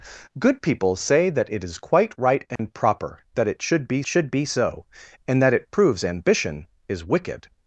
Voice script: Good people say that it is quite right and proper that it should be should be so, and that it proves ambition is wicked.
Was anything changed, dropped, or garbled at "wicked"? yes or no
no